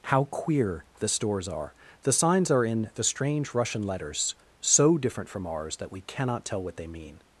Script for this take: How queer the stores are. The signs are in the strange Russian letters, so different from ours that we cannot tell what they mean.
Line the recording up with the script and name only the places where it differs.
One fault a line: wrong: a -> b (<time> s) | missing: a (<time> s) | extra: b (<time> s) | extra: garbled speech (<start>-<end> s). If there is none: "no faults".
no faults